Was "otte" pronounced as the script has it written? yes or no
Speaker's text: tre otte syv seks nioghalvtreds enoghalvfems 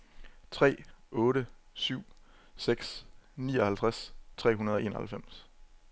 yes